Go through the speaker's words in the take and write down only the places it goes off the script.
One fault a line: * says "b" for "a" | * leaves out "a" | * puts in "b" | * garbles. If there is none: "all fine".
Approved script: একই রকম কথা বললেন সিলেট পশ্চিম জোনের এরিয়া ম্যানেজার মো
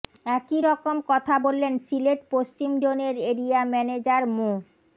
all fine